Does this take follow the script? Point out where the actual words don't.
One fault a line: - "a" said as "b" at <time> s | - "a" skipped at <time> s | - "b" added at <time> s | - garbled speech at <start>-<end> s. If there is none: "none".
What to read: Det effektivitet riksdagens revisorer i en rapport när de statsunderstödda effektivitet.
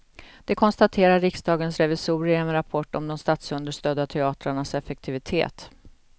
- "effektivitet" said as "konstaterar" at 0.5 s
- "när" said as "om" at 2.9 s
- "teatrarnas" added at 4.1 s